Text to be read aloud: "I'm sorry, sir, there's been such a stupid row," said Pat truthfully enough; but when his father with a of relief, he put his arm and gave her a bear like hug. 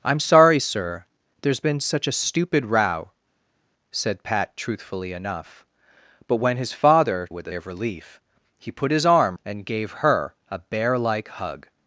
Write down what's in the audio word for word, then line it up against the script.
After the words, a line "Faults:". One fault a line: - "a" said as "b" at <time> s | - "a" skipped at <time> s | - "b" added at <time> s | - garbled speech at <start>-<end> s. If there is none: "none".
"I'm sorry, sir, there's been such a stupid row," said Pat truthfully enough; but when his father with a of relief, he put his arm and gave her a bear like hug.
Faults:
none